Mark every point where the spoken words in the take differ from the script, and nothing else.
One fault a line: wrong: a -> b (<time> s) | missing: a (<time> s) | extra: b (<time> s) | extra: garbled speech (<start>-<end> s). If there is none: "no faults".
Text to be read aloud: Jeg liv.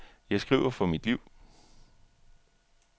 extra: skriver for mit (0.4 s)